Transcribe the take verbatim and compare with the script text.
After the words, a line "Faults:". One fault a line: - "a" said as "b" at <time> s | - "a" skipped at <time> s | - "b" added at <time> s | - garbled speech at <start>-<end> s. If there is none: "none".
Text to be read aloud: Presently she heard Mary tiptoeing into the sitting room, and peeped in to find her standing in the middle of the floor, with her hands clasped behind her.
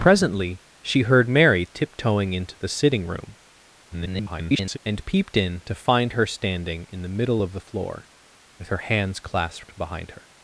Presently she heard Mary tiptoeing into the sitting room, [garbled] and peeped in to find her standing in the middle of the floor, with her hands clasped behind her.
Faults:
- garbled speech at 3.9-4.8 s